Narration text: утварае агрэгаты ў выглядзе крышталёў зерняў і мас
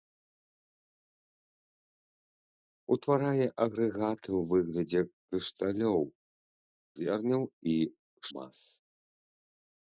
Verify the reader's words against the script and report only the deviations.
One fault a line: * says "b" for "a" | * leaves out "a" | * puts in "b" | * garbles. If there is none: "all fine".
all fine